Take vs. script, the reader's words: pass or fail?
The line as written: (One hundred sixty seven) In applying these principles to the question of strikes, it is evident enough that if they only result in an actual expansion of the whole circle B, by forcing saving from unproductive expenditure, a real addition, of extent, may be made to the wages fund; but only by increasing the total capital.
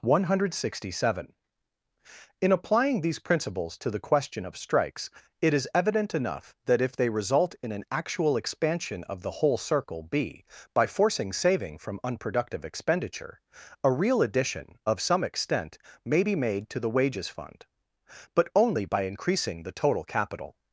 fail